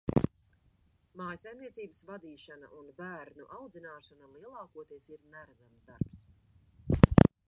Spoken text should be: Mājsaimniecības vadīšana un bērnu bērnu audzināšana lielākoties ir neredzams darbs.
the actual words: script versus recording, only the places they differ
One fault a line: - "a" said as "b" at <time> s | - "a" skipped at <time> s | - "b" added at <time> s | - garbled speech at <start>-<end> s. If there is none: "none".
- "bērnu" skipped at 3.5 s